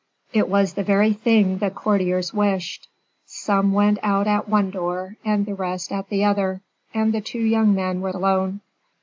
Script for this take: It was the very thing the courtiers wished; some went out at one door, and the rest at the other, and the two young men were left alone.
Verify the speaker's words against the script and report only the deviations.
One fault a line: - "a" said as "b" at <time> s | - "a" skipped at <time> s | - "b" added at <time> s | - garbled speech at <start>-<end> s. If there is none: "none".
- "left" skipped at 8.1 s